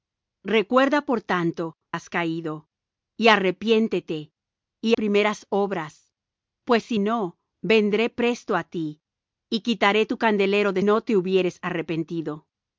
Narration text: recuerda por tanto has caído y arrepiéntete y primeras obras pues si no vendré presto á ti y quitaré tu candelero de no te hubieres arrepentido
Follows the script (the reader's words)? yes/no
yes